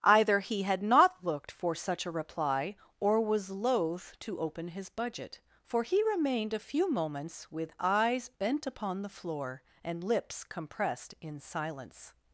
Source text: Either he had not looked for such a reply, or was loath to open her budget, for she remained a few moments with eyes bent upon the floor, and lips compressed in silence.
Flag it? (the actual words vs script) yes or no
yes